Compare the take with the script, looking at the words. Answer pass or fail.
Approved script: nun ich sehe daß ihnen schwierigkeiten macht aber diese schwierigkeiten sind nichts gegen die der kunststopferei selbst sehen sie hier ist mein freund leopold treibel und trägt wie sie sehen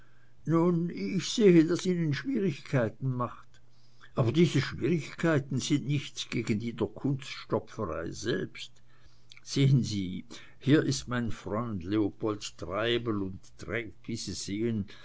pass